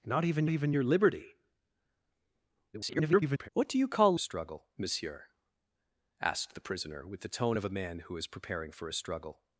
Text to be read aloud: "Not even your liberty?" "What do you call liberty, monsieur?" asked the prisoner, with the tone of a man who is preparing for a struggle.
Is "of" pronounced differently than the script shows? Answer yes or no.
no